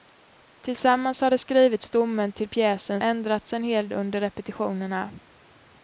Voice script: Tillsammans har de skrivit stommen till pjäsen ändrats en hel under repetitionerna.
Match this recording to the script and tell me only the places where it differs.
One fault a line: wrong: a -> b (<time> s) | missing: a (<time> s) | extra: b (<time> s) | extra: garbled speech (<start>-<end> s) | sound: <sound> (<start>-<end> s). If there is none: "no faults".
no faults